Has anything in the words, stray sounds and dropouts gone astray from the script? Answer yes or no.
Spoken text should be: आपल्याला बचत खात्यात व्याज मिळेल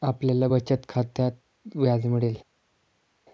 no